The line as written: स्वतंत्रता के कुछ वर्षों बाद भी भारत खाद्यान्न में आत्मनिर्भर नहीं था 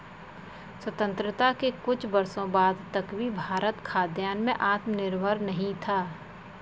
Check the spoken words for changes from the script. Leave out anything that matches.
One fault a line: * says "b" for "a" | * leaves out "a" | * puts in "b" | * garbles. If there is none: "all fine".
* puts in "तक"